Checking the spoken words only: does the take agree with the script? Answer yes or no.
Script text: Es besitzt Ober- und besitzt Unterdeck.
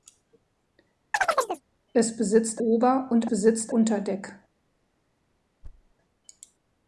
yes